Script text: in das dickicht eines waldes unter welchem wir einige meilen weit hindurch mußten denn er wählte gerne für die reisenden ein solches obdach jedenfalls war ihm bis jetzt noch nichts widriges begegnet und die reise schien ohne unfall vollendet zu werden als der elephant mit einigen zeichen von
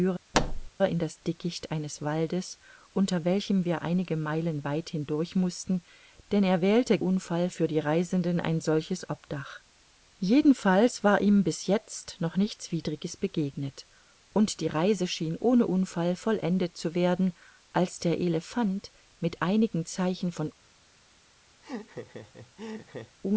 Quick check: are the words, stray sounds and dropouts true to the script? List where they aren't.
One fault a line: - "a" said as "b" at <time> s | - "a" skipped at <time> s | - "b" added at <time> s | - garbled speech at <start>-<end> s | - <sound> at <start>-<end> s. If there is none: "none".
- thud at 0.3-0.7 s
- "gerne" said as "unfall" at 7.0 s
- laugh at 21.6-23.2 s